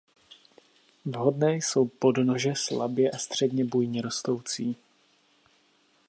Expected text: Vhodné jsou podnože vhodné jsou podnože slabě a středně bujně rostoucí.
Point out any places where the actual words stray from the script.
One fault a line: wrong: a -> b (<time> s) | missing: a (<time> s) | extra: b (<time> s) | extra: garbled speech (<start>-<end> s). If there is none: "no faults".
missing: vhodné jsou podnože (2.5 s)